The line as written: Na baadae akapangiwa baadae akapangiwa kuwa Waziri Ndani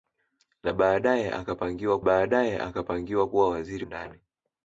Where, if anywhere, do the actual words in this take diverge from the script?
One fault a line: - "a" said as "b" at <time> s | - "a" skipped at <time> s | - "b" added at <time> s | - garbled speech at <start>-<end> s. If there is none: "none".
none